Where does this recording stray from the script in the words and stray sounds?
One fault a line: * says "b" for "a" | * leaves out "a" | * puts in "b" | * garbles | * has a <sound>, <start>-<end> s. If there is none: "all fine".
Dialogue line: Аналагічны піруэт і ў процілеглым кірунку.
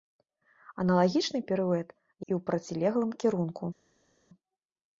all fine